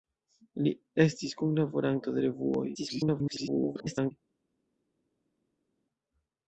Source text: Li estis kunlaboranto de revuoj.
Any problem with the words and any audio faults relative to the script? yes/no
yes